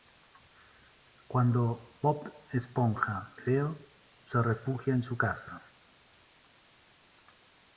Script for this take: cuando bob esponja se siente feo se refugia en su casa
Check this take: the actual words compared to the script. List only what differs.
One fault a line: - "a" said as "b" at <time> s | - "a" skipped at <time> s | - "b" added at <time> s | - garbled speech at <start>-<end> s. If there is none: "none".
- "se siente" skipped at 3.4 s